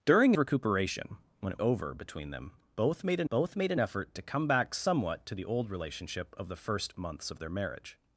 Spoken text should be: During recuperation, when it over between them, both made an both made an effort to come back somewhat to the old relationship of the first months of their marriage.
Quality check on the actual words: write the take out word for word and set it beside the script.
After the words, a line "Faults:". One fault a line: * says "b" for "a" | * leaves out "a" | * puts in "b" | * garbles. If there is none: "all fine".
During recuperation, when it over between them, both made an both made an effort to come back somewhat to the old relationship of the first months of their marriage.
Faults:
all fine